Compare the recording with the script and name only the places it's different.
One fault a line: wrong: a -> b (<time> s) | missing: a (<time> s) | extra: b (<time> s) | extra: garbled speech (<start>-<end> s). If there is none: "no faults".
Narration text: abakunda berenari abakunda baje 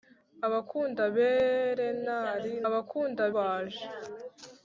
no faults